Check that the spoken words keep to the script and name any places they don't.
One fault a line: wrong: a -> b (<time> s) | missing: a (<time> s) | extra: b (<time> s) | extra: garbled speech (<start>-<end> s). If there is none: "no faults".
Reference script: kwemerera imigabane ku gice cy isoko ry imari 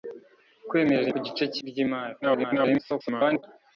missing: imigabane (1.1 s)
missing: isoko (1.6 s)
extra: garbled speech (2.2-3.4 s)